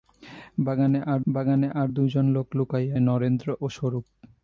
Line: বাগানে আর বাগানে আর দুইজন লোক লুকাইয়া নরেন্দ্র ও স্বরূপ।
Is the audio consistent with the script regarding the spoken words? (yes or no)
yes